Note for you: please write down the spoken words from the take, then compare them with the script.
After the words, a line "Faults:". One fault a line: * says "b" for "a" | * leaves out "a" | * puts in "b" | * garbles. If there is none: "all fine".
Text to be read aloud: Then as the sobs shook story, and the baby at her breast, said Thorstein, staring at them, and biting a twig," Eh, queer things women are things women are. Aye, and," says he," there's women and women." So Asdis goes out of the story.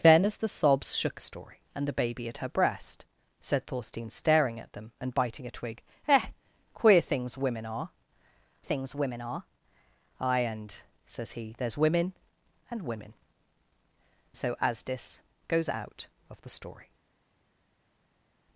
Then as the sobs shook story, and the baby at her breast, said Thorstein, staring at them, and biting a twig," Eh, queer things women are things women are. Aye, and," says he," there's women and women." So Asdis goes out of the story.
Faults:
all fine